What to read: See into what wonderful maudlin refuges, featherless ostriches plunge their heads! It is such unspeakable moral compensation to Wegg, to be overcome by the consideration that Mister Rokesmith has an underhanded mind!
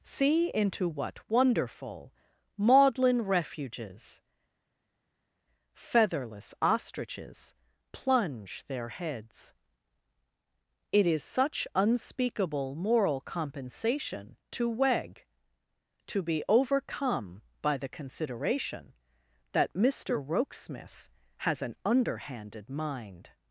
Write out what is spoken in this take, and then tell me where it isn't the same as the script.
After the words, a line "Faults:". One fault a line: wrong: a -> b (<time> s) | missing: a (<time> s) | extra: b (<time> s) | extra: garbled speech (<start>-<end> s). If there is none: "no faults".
See into what wonderful maudlin refuges, featherless ostriches plunge their heads! It is such unspeakable moral compensation to Wegg, to be overcome by the consideration that Mister Rokesmith has an underhanded mind!
Faults:
no faults